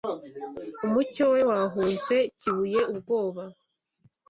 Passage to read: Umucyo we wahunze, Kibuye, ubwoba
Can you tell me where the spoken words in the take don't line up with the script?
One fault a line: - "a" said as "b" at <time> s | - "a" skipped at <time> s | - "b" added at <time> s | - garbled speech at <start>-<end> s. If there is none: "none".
none